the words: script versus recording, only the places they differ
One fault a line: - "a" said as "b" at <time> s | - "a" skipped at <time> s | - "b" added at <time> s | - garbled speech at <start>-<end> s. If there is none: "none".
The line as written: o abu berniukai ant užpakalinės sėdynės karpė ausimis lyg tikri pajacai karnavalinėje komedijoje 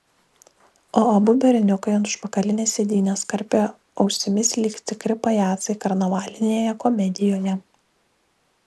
none